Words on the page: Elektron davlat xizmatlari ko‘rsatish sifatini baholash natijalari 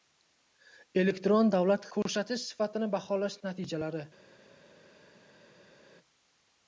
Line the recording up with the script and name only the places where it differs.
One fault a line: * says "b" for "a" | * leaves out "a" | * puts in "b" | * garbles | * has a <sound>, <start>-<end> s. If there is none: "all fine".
* leaves out "xizmatlari"